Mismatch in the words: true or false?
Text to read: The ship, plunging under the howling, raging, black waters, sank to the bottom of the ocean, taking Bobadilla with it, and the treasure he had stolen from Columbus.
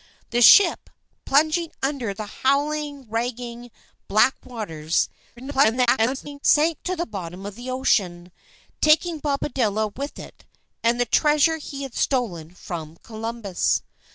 true